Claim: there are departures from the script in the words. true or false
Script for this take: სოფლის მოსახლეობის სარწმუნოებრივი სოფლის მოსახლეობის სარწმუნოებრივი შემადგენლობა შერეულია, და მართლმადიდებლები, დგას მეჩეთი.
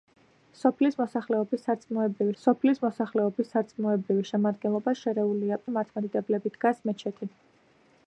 false